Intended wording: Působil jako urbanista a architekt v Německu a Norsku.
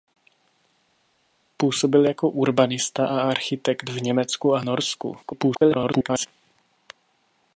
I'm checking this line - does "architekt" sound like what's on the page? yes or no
yes